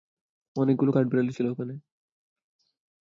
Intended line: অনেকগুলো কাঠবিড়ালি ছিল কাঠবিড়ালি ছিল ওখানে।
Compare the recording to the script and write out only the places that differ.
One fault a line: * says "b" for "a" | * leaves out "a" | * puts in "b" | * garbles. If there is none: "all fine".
* leaves out "কাঠবিড়ালি ছিল"